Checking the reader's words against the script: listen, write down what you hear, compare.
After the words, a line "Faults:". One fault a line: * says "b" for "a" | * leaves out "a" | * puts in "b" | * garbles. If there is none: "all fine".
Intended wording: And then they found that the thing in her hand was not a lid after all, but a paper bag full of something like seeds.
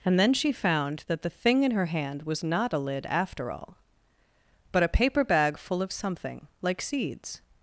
And then she found that the thing in her hand was not a lid after all, but a paper bag full of something like seeds.
Faults:
* says "she" for "they"